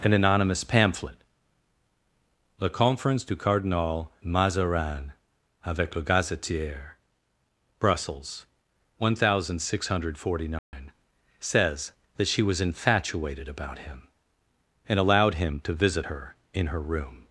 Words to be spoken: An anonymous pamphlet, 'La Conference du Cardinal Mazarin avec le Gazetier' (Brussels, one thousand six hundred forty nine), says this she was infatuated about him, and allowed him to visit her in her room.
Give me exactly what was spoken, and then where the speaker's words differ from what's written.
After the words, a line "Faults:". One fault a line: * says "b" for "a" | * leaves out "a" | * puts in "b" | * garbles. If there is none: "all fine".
An anonymous pamphlet, 'La Conference du Cardinal Mazarin avec le Gazetier' (Brussels, one thousand six hundred forty nine), says that she was infatuated about him, and allowed him to visit her in her room.
Faults:
* says "that" for "this"